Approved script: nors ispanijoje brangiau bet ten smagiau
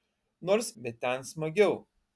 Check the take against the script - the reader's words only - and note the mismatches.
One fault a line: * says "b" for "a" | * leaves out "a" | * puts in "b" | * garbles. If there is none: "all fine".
* leaves out "ispanijoje brangiau"